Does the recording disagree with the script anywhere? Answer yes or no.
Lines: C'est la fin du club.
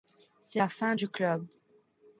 no